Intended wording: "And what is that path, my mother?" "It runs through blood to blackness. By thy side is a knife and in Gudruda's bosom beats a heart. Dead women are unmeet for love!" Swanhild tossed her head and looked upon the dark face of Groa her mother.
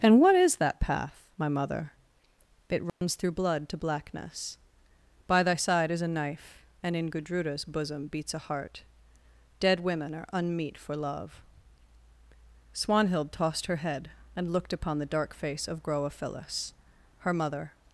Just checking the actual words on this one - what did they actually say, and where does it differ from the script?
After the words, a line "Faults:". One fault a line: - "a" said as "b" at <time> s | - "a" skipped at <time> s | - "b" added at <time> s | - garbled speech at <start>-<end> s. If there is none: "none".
"And what is that path, my mother?" "It runs through blood to blackness. By thy side is a knife and in Gudruda's bosom beats a heart. Dead women are unmeet for love!" Swanhild tossed her head and looked upon the dark face of Groa phyllis her mother.
Faults:
- "phyllis" added at 16.1 s